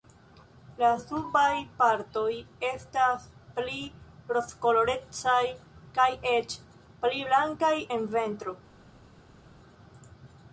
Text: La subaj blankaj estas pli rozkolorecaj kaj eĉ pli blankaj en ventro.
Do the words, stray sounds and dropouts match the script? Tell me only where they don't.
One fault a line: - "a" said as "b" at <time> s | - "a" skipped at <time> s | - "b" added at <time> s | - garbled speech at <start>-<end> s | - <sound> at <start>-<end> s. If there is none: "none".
- "blankaj" said as "partoj" at 1.8 s